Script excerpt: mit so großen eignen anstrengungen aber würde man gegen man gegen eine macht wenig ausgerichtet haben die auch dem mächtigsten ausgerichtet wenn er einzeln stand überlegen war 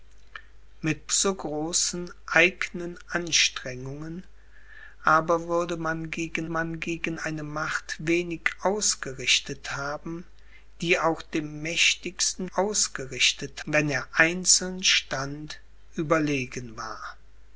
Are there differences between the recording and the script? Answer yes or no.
no